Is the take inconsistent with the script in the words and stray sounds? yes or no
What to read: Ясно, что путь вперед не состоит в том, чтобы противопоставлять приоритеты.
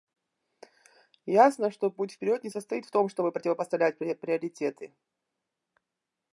no